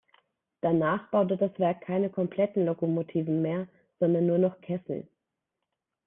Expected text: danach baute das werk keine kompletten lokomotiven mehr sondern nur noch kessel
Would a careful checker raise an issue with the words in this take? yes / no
no